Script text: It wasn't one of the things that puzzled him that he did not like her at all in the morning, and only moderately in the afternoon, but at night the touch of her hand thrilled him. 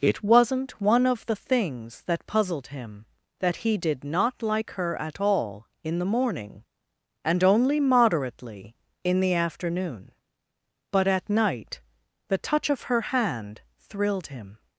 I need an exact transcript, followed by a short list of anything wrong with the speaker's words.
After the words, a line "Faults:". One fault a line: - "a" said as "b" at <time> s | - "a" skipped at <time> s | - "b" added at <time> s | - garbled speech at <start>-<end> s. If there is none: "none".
It wasn't one of the things that puzzled him that he did not like her at all in the morning, and only moderately in the afternoon, but at night the touch of her hand thrilled him.
Faults:
none